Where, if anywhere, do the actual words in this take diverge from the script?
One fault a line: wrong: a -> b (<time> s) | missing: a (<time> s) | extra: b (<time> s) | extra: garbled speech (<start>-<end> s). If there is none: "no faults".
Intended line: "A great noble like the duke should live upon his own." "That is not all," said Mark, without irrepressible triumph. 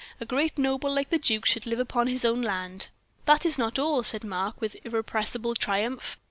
extra: land (2.4 s)
wrong: without -> with (4.6 s)